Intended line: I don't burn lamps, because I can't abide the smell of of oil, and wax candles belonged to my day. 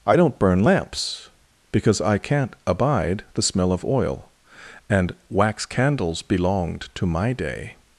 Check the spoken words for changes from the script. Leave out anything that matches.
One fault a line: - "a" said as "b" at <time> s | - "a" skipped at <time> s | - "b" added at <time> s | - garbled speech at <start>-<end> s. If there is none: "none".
- "of" skipped at 3.8 s